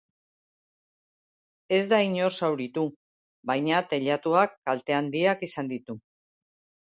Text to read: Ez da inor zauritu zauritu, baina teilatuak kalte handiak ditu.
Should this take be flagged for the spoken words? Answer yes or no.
yes